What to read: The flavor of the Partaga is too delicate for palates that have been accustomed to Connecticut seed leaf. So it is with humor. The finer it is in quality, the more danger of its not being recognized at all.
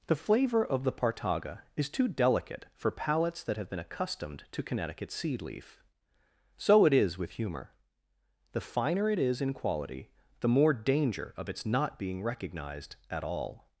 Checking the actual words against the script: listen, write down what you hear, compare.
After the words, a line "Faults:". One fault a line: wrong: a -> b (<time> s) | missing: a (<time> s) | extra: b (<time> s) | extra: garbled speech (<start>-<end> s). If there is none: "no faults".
The flavor of the Partaga is too delicate for palates that have been accustomed to Connecticut seed leaf. So it is with humor. The finer it is in quality, the more danger of its not being recognized at all.
Faults:
no faults